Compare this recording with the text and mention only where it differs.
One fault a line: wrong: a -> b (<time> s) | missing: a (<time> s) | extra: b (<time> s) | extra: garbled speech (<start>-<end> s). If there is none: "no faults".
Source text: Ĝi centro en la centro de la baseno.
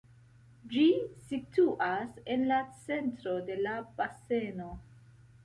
wrong: centro -> situas (1.3 s)